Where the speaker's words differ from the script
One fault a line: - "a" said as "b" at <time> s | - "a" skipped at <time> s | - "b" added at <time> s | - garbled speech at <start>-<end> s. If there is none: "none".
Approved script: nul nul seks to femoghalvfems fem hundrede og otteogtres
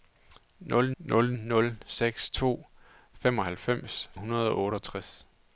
- "nul" added at 1.3 s
- "fem" skipped at 4.1 s